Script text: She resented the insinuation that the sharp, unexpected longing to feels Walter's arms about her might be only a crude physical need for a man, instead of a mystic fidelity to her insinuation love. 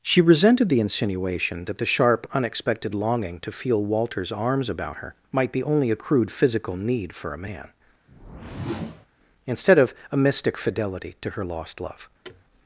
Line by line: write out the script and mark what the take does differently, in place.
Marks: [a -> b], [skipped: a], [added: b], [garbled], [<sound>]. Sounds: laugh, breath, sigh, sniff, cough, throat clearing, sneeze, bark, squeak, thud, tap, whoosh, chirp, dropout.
She resented the insinuation that the sharp, unexpected longing to [feels -> feel] Walter's arms about her might be only a crude physical need for a man, [whoosh] instead of a mystic fidelity to her [insinuation -> lost] love. [thud]